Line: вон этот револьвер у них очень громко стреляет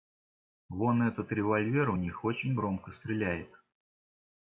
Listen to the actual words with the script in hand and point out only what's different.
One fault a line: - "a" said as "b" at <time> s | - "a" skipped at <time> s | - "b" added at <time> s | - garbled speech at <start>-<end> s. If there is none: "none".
none